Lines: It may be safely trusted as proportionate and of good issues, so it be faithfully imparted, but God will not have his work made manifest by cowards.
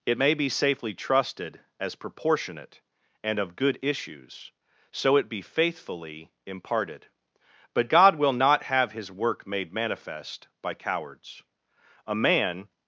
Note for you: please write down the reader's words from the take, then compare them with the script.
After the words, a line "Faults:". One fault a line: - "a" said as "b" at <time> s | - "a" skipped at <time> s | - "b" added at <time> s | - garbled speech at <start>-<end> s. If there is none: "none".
It may be safely trusted as proportionate and of good issues, so it be faithfully imparted, but God will not have his work made manifest by cowards. A man
Faults:
- "A man" added at 12.1 s